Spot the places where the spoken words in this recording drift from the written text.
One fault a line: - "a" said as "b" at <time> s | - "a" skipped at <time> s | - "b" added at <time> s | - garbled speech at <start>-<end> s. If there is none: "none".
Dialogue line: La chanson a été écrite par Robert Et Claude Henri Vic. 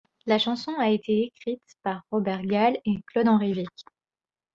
- "Gall" added at 2.4 s